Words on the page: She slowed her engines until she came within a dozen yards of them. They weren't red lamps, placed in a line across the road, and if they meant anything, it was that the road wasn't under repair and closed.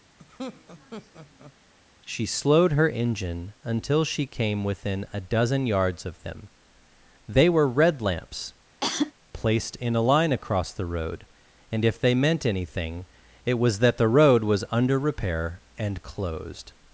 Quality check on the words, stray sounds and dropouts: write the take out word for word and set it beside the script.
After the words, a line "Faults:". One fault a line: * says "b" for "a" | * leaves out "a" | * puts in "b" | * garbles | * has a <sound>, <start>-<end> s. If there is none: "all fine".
She slowed her engine until she came within a dozen yards of them. They were red lamps, placed in a line across the road, and if they meant anything, it was that the road was under repair and closed.
Faults:
* has a laugh, 0.2-1.5 s
* says "engine" for "engines"
* says "were" for "weren't"
* has a cough, 8.8-9.1 s
* says "was" for "wasn't"